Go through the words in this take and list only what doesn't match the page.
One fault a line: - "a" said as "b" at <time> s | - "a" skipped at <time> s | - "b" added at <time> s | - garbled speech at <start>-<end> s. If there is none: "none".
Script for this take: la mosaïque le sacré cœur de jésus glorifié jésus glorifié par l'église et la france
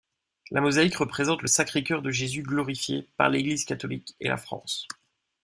- "représente" added at 0.9 s
- "jésus glorifié" skipped at 3.1 s
- "catholique" added at 3.6 s